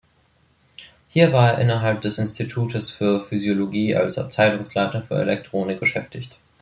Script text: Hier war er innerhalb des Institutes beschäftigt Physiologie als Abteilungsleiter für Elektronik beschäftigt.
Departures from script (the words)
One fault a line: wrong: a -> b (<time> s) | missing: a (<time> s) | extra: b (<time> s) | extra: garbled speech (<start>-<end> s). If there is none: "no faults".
wrong: beschäftigt -> für (2.9 s)